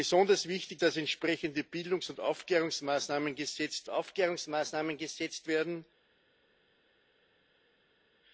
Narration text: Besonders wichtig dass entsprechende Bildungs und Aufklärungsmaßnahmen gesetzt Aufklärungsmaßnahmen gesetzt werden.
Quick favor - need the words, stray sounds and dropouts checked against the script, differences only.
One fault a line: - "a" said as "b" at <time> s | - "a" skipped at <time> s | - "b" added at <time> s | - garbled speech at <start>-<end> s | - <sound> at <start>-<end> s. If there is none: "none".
none